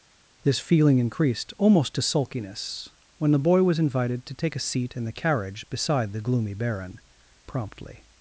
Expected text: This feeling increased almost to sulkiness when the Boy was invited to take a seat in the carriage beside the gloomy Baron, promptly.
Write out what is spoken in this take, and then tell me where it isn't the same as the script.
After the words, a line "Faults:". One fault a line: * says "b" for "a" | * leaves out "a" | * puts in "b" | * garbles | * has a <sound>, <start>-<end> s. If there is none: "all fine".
This feeling increased almost to sulkiness when the Boy was invited to take a seat in the carriage beside the gloomy Baron, promptly.
Faults:
all fine